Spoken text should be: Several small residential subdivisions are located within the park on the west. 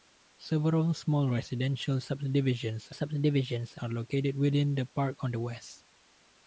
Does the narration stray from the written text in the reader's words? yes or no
yes